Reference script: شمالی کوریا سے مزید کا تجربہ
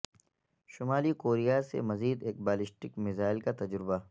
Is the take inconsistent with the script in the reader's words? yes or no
yes